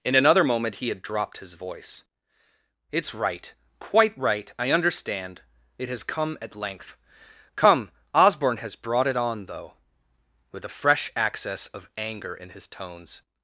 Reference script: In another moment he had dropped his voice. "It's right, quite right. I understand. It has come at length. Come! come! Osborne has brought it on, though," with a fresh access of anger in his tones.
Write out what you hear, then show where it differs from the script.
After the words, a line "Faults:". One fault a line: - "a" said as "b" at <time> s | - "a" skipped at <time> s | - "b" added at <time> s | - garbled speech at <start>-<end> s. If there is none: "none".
In another moment he had dropped his voice. "It's right, quite right. I understand. It has come at length. Come! Osborne has brought it on, though," with a fresh access of anger in his tones.
Faults:
- "come" skipped at 7.9 s